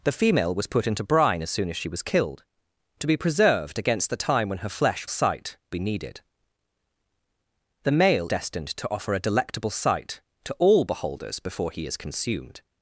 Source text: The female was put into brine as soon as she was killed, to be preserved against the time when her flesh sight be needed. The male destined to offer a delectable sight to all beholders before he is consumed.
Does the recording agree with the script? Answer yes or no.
yes